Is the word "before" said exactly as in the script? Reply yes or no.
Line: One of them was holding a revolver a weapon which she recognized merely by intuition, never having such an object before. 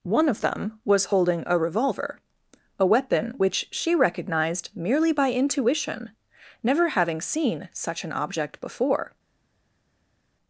yes